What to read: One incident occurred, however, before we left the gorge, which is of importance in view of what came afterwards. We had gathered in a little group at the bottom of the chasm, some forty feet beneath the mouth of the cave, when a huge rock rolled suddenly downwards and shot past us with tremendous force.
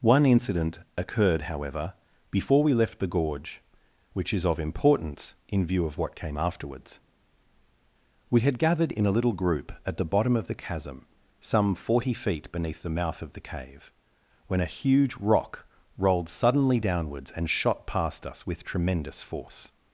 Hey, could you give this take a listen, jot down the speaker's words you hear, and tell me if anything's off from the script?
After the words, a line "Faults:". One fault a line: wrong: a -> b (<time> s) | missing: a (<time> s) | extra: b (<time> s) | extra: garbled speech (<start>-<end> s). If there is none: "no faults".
One incident occurred, however, before we left the gorge, which is of importance in view of what came afterwards. We had gathered in a little group at the bottom of the chasm, some forty feet beneath the mouth of the cave, when a huge rock rolled suddenly downwards and shot past us with tremendous force.
Faults:
no faults